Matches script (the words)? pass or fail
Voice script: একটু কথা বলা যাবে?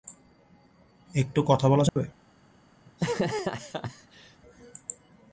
pass